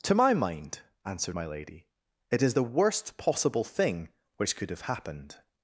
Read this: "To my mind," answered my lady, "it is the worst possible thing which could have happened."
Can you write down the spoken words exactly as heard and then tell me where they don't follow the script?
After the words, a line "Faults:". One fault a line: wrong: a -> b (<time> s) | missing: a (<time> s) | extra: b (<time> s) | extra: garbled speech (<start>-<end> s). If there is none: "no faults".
"To my mind," answered my lady, "it is the worst possible thing which could have happened."
Faults:
no faults